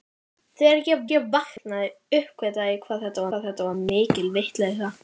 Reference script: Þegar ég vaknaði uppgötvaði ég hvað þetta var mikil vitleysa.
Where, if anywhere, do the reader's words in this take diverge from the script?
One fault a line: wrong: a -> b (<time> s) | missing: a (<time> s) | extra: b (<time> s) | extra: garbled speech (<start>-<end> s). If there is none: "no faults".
extra: ég (1.1 s)
extra: hvað þetta (3.3 s)